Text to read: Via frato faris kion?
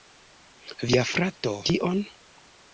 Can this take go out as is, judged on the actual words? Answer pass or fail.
fail